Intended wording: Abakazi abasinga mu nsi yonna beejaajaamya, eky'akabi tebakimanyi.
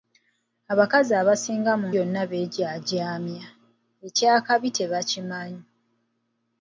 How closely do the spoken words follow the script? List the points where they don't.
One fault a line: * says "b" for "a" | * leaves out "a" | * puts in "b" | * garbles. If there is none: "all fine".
* leaves out "nsi"